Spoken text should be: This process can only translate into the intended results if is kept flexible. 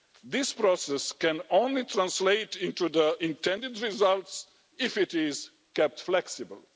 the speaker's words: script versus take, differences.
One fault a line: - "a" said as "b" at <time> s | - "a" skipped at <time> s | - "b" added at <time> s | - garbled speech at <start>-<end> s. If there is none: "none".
- "it" added at 5.0 s